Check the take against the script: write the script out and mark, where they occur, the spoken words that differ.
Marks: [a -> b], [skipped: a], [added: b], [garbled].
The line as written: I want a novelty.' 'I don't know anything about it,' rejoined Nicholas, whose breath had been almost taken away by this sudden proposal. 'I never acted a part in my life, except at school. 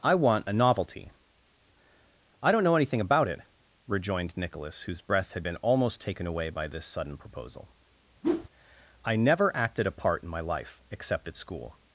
I want a novelty.' 'I don't know anything about it,' rejoined Nicholas, whose breath had been almost taken away by this sudden proposal. 'I never acted a part in my life, except at school.